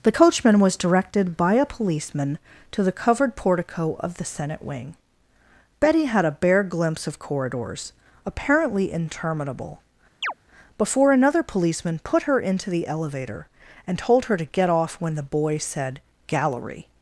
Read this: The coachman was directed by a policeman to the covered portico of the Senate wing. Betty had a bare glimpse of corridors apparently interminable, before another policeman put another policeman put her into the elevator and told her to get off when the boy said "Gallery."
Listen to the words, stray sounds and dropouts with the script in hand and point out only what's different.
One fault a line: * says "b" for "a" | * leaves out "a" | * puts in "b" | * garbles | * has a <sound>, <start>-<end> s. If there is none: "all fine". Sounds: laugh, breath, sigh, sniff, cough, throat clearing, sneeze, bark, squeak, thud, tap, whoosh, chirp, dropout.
* has a chirp, 10.2-10.3 s
* leaves out "another policeman put"